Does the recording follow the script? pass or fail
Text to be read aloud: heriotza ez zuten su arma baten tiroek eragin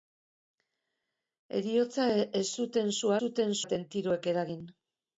fail